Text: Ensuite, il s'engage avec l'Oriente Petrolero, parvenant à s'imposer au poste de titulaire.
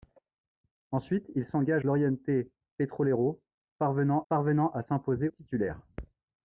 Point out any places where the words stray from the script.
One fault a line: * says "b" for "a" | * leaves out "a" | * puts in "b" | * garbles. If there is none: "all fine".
* leaves out "avec"
* puts in "parvenant"
* leaves out "au poste de"